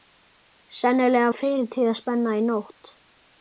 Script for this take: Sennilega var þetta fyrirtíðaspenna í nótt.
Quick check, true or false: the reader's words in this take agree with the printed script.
false